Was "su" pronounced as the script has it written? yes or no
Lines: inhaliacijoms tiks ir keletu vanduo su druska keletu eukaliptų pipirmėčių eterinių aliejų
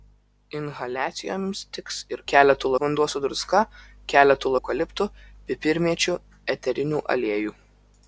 yes